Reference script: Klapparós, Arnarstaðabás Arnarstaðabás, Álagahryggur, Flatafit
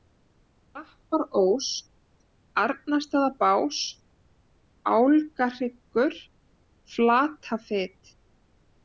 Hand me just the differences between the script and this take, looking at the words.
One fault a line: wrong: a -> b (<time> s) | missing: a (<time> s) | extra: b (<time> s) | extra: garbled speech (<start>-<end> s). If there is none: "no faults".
missing: Arnarstaðabás (3.8 s)